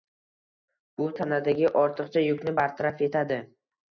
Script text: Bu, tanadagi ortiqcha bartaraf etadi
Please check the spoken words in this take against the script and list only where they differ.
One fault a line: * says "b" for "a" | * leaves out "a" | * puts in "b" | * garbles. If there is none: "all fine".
* puts in "yukni"